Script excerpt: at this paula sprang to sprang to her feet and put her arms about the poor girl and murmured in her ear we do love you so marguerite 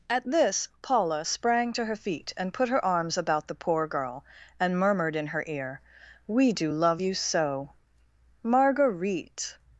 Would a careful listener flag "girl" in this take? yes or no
no